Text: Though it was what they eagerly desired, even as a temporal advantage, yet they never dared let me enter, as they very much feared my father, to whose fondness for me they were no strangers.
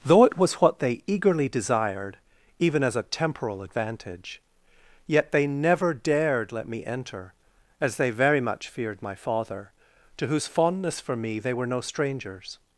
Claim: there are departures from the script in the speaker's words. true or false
false